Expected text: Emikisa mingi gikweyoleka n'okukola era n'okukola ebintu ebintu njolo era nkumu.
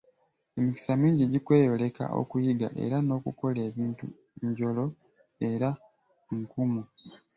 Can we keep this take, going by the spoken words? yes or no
no